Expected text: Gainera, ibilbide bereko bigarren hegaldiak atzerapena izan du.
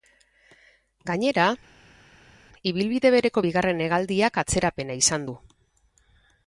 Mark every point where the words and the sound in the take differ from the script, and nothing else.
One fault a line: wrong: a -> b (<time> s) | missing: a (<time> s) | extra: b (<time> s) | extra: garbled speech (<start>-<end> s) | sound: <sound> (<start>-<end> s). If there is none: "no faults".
no faults